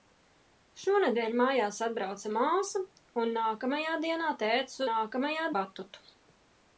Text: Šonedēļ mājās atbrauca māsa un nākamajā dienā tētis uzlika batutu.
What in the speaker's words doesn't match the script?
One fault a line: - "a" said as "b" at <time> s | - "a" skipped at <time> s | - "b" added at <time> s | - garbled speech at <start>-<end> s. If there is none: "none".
- "uzlika" said as "nākamajā" at 4.9 s